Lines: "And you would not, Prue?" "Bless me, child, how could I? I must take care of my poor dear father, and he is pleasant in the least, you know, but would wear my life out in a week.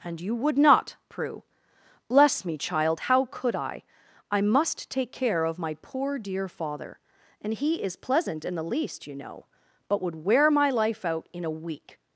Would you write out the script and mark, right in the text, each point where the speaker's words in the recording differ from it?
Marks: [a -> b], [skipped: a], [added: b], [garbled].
"And you would not, Prue?" "Bless me, child, how could I? I must take care of my poor dear father, and he is pleasant in the least, you know, but would wear my life out in a week.